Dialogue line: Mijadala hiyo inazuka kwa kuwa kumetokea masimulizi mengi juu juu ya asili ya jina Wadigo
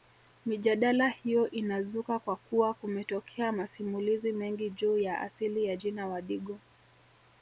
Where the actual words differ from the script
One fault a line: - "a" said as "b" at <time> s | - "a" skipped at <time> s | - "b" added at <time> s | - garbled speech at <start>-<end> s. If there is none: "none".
- "juu" skipped at 5.0 s